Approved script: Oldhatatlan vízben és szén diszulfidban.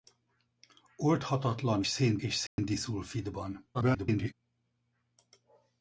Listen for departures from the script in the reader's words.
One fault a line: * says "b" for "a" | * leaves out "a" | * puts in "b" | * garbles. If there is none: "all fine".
* says "szén" for "vízben"
* garbles